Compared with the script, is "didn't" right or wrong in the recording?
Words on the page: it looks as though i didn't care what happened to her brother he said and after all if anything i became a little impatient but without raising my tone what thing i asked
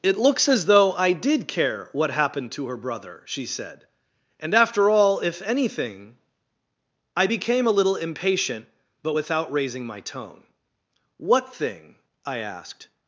wrong